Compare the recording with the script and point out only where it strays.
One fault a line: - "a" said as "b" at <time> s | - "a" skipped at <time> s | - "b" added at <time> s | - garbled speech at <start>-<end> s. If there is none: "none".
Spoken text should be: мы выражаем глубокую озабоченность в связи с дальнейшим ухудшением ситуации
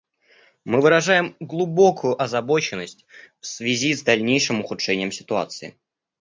none